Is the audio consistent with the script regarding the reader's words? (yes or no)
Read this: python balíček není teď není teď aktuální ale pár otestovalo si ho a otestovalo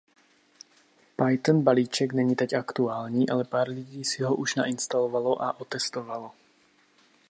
no